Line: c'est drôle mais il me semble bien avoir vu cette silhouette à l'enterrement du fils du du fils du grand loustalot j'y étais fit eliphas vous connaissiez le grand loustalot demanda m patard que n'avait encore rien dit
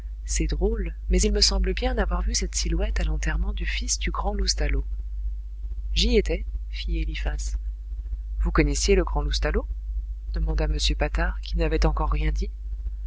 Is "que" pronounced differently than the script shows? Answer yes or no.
yes